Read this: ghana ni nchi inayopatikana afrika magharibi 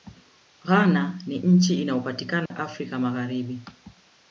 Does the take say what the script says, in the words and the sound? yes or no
no